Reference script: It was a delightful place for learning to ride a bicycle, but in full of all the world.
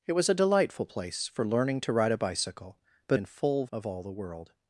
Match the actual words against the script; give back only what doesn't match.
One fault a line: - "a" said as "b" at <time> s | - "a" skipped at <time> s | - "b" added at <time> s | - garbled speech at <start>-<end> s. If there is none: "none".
none